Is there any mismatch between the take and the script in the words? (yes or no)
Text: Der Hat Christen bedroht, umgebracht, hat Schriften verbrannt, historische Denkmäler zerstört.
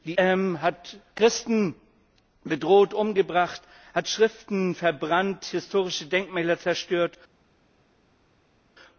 no